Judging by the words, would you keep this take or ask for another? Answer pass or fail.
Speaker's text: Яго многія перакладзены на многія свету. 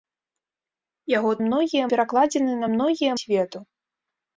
pass